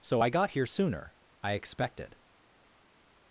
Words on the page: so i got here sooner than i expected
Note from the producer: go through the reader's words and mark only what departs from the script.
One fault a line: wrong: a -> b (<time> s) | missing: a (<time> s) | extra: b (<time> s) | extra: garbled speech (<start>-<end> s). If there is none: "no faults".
missing: than (1.1 s)